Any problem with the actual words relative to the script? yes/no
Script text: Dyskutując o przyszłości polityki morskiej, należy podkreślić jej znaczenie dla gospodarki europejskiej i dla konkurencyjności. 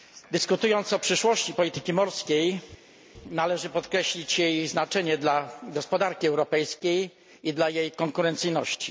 yes